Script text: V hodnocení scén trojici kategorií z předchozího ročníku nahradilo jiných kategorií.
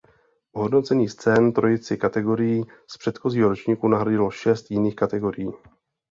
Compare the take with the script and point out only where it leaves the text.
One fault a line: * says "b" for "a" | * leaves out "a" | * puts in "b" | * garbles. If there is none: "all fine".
* puts in "šest"